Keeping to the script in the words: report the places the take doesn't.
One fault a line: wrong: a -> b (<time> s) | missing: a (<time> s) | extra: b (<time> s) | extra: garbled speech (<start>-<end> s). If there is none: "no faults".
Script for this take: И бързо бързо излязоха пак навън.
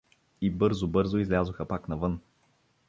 no faults